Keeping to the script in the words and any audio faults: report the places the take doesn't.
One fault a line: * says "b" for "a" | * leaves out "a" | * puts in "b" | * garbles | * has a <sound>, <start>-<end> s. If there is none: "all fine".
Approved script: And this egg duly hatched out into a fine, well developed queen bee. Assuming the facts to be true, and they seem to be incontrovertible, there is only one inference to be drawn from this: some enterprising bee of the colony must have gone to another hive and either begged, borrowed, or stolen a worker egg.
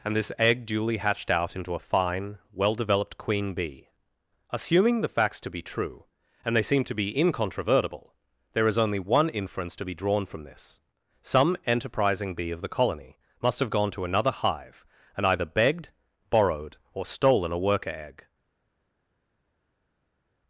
all fine